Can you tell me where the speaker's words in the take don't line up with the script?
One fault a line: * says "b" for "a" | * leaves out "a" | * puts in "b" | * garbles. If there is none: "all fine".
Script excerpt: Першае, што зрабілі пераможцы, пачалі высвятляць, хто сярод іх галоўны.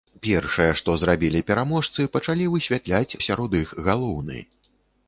* leaves out "хто"